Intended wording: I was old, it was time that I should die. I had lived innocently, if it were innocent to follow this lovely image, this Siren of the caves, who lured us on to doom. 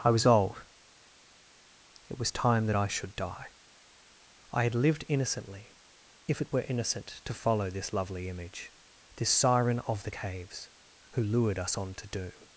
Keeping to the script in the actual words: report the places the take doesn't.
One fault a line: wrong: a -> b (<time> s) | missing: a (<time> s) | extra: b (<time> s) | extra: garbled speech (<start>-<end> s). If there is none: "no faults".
no faults